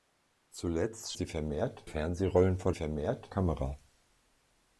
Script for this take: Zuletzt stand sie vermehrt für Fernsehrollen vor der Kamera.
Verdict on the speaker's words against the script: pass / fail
fail